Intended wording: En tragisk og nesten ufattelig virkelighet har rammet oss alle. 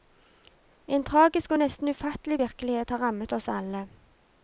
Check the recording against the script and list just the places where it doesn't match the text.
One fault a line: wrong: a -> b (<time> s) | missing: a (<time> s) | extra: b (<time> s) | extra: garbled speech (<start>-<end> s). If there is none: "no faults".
no faults